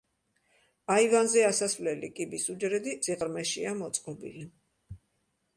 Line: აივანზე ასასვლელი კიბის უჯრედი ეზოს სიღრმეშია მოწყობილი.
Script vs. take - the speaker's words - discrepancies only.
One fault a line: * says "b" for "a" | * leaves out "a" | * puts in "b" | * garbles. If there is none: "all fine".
* leaves out "ეზოს"